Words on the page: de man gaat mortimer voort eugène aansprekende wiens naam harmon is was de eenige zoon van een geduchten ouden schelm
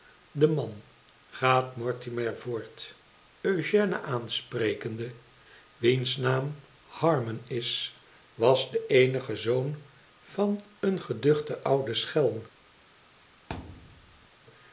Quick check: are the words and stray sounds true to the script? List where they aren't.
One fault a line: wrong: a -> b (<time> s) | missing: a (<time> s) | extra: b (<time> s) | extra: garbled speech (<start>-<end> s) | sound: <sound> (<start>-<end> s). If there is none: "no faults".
sound: thud (13.5-14.3 s)